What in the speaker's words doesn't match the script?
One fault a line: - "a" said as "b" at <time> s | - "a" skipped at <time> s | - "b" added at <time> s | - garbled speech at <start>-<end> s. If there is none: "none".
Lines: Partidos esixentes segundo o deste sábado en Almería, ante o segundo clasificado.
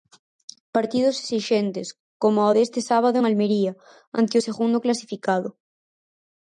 - "segundo" said as "coma" at 2.2 s